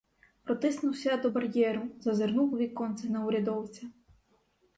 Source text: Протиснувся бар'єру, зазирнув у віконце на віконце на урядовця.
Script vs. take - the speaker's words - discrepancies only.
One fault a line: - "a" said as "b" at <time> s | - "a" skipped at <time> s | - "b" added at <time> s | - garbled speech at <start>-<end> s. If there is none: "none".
- "до" added at 1.2 s
- "віконце на" skipped at 3.3 s